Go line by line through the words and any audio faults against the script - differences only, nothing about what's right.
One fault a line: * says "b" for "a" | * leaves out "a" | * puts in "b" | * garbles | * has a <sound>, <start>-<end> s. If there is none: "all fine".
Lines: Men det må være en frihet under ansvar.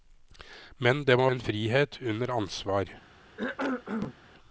* leaves out "være"
* has a cough, 3.4-4.1 s